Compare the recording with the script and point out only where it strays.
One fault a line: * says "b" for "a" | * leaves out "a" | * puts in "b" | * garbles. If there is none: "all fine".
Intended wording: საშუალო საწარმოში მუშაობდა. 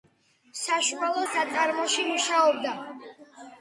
all fine